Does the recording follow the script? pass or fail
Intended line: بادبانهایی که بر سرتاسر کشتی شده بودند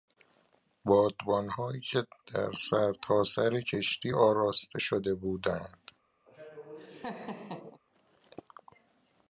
fail